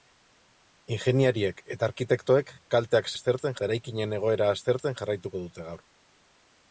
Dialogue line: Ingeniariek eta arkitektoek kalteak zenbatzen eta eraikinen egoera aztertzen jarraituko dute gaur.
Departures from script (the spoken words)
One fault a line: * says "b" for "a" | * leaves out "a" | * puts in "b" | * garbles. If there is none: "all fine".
* says "aztertzen" for "zenbatzen"